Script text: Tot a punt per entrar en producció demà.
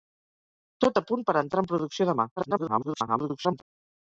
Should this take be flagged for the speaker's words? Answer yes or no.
yes